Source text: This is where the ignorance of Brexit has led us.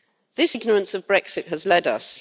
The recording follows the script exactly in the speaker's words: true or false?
false